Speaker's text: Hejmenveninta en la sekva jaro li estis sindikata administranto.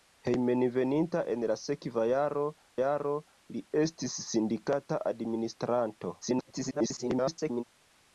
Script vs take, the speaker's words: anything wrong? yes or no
yes